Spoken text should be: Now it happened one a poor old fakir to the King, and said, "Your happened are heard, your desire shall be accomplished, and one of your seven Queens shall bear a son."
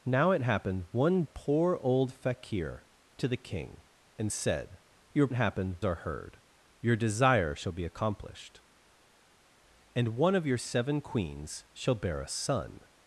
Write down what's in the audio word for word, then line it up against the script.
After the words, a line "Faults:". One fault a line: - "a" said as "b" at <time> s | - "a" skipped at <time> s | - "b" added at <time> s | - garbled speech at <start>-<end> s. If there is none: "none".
Now it happened one a poor old fakir to the King, and said, "Your happened are heard, your desire shall be accomplished, and one of your seven Queens shall bear a son."
Faults:
none